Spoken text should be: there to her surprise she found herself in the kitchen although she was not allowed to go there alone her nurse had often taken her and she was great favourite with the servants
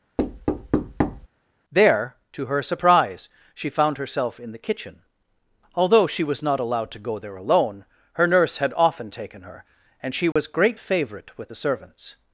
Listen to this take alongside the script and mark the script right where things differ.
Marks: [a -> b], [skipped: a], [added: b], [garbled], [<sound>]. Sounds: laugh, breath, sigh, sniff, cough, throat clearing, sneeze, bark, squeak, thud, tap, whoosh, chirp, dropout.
[thud] there to her surprise she found herself in the kitchen although she was not allowed to go there alone her nurse had often taken her and she was [dropout] great favourite with the servants